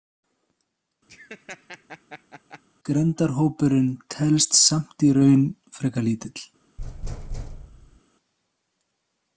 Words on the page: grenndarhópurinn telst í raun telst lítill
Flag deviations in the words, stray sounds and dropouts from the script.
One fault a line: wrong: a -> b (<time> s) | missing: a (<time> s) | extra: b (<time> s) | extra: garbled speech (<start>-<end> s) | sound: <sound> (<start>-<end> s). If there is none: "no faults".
sound: laugh (1.1-2.6 s)
extra: samt (4.6 s)
wrong: telst -> frekar (5.8 s)
sound: thud (6.8-8.0 s)